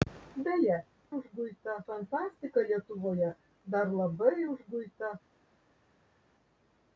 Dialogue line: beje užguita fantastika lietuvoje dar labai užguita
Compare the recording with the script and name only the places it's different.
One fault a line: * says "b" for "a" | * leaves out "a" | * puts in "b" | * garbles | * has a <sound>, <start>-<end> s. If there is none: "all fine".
all fine